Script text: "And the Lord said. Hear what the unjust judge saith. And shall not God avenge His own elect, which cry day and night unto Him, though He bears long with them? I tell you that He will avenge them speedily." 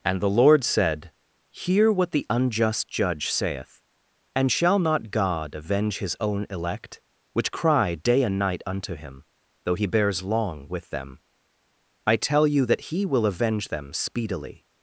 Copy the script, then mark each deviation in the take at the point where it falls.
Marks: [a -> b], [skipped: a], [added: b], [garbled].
"And the Lord said. Hear what the unjust judge saith. And shall not God avenge His own elect, which cry day and night unto Him, though He bears long with them? I tell you that He will avenge them speedily."